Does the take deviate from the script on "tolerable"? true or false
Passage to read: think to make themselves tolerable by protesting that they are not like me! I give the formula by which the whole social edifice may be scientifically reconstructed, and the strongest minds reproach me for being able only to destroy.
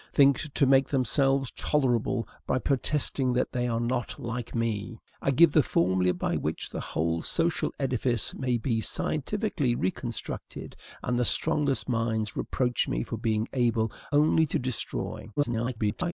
false